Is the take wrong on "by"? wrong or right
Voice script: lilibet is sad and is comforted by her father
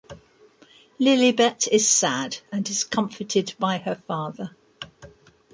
right